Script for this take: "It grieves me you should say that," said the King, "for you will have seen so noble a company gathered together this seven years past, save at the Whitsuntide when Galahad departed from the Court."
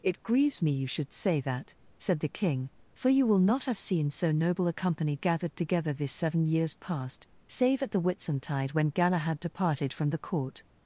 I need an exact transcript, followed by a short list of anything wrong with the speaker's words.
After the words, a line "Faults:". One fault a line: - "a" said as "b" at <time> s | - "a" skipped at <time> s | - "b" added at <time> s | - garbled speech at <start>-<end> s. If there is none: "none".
"It grieves me you should say that," said the King, "for you will not have seen so noble a company gathered together this seven years past, save at the Whitsuntide when Galahad departed from the Court."
Faults:
- "not" added at 3.4 s